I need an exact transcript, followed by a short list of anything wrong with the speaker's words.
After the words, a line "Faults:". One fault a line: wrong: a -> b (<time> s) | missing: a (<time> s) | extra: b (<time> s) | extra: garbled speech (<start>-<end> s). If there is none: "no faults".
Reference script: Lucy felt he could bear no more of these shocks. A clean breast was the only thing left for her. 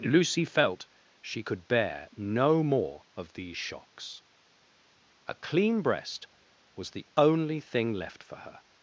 Lucy felt she could bear no more of these shocks. A clean breast was the only thing left for her.
Faults:
wrong: he -> she (1.2 s)